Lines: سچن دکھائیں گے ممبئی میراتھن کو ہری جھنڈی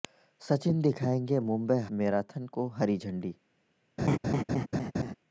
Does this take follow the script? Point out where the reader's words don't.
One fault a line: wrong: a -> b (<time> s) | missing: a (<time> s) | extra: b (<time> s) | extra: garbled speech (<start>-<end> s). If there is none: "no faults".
no faults